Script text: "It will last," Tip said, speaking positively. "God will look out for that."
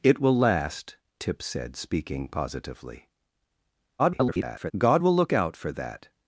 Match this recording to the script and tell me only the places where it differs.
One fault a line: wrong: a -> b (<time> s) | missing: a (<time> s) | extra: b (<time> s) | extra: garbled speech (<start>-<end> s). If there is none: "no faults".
extra: garbled speech (4.0-4.7 s)